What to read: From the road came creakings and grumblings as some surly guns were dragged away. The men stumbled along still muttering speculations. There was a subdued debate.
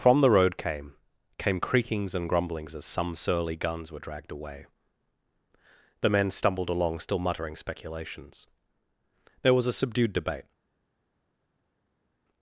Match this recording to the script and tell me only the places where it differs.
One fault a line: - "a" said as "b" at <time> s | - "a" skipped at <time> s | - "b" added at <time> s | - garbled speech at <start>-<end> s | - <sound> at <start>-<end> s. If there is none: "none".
- "came" added at 1.4 s